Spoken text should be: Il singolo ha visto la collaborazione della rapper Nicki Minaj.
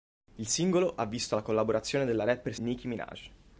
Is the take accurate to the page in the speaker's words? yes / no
yes